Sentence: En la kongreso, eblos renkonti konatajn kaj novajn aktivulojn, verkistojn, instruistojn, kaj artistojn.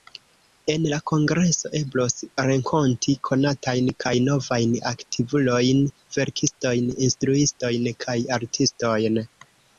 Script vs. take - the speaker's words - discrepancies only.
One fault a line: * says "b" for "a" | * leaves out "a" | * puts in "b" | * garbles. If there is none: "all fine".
all fine